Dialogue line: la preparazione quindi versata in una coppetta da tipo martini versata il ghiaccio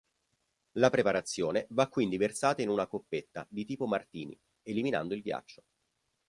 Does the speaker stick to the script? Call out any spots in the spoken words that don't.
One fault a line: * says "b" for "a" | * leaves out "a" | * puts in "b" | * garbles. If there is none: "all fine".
* puts in "va"
* says "di" for "da"
* says "eliminando" for "versata"